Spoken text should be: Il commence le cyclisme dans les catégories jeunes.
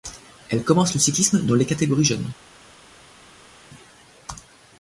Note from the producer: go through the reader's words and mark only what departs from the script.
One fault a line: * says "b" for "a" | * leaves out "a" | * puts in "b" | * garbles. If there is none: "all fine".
* says "Elle" for "Il"